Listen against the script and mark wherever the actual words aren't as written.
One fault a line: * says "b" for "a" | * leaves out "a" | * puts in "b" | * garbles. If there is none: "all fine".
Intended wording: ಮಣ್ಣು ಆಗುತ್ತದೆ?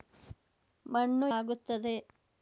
all fine